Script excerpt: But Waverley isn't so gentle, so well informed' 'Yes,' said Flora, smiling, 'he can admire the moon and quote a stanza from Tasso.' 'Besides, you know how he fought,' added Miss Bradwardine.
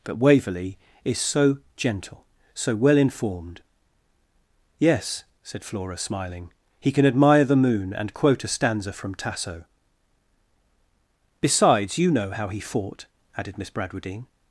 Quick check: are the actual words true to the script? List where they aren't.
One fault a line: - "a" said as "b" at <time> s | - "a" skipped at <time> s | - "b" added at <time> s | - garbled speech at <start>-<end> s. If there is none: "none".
- "isn't" said as "is" at 1.0 s